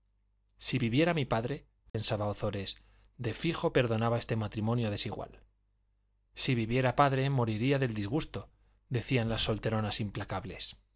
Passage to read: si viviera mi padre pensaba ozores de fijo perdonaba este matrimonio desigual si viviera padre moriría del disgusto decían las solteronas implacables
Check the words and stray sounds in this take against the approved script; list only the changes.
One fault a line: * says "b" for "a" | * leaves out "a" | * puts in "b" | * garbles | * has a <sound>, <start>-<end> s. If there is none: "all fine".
* has a dropout, 1.9-1.9 s